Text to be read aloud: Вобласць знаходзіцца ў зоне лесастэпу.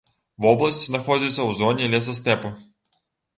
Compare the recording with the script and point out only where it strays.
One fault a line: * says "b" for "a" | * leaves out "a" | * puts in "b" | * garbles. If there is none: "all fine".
all fine